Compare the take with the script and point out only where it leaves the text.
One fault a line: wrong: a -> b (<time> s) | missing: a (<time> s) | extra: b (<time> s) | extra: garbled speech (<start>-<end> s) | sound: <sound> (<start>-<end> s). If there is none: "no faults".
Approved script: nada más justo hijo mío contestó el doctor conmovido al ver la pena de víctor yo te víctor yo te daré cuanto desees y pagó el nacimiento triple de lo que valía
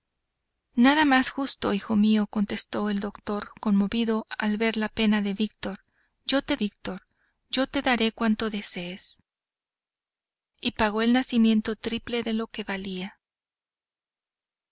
no faults